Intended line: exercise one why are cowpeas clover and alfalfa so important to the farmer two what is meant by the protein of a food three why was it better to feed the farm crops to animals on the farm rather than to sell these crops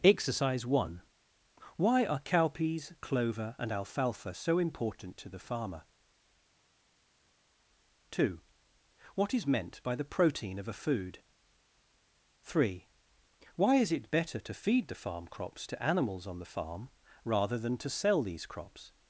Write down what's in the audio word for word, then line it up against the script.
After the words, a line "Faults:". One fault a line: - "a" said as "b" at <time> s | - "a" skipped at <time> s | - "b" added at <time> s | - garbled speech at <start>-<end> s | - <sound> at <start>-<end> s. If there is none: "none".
exercise one why are cowpeas clover and alfalfa so important to the farmer two what is meant by the protein of a food three why is it better to feed the farm crops to animals on the farm rather than to sell these crops
Faults:
- "was" said as "is" at 13.8 s